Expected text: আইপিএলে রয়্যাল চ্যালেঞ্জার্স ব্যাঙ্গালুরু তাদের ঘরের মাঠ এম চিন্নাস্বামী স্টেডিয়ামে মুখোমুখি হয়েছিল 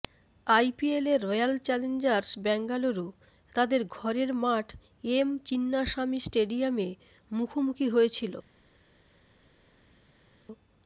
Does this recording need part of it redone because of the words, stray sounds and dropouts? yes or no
no